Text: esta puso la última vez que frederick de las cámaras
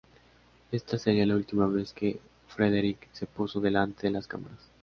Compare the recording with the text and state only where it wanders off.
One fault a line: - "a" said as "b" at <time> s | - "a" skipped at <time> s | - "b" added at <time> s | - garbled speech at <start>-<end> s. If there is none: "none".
- "puso" said as "sería" at 1.0 s
- "se puso delante" added at 3.1 s